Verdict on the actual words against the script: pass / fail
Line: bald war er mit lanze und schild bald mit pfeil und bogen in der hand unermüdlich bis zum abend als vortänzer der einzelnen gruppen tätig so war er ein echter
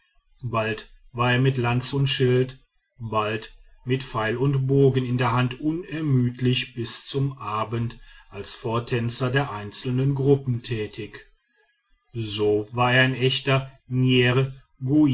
pass